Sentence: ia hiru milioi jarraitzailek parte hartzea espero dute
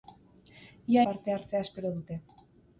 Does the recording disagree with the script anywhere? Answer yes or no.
yes